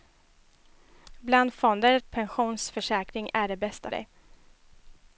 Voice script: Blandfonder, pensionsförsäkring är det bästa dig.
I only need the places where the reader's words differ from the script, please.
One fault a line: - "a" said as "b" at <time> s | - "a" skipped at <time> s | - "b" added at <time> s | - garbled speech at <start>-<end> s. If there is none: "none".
none